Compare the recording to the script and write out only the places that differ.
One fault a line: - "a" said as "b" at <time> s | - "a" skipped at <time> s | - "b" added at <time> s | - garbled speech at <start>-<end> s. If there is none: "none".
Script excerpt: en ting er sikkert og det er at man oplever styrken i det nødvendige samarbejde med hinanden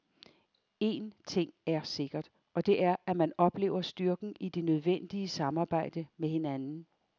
none